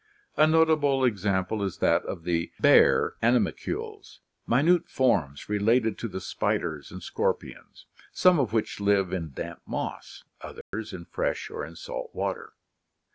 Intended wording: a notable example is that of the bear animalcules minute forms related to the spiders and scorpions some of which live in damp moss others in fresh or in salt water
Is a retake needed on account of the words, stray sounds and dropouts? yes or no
yes